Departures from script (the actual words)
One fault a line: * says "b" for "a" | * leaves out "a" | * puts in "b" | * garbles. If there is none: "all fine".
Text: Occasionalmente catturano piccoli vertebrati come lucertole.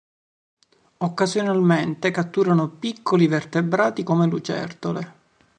all fine